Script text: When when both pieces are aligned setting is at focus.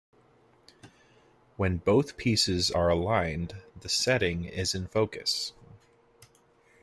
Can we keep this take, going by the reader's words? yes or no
no